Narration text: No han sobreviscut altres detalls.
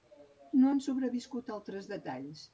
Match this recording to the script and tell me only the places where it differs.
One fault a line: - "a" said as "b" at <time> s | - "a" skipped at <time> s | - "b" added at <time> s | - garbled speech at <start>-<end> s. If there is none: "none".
none